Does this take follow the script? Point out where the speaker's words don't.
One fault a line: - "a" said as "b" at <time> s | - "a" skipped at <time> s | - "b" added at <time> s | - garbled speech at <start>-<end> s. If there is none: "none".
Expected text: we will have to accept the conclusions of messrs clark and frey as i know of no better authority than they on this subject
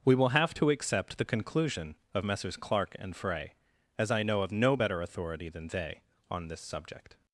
- "conclusions" said as "conclusion" at 1.3 s